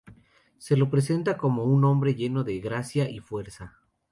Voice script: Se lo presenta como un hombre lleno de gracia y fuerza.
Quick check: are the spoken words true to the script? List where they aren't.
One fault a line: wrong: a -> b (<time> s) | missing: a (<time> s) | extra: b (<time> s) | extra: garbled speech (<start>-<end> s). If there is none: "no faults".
no faults